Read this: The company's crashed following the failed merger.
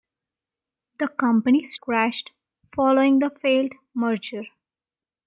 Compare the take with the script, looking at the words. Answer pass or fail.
pass